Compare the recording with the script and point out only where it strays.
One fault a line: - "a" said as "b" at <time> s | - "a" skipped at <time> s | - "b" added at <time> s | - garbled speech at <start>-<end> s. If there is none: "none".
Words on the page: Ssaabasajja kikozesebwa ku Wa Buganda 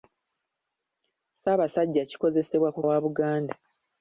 none